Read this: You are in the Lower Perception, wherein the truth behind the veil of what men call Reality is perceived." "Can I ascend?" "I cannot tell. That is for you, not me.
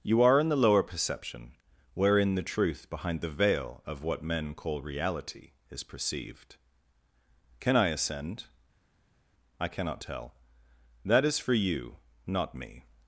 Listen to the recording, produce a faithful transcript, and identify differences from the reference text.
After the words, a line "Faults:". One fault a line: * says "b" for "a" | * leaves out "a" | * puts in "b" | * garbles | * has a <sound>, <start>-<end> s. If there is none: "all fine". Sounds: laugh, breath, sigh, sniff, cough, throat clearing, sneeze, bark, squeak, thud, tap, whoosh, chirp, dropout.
You are in the Lower Perception, wherein the truth behind the veil of what men call Reality is perceived." "Can I ascend?" "I cannot tell. That is for you, not me.
Faults:
all fine